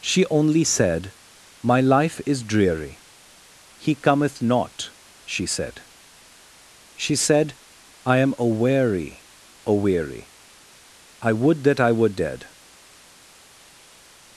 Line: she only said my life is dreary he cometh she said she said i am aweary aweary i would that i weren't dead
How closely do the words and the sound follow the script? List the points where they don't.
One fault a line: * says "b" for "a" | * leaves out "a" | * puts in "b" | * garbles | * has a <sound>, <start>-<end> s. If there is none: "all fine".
* puts in "not"
* says "were" for "weren't"